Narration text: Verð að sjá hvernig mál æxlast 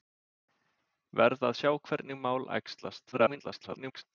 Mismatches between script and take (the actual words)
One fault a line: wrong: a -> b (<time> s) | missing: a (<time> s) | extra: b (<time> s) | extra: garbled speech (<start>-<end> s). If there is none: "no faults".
extra: garbled speech (3.1-4.0 s)